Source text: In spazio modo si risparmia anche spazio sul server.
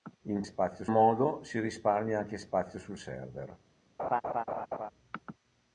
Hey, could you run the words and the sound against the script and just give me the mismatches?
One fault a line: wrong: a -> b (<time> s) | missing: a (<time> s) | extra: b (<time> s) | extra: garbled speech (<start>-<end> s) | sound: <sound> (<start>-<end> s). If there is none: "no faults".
sound: laugh (4.0-4.9 s)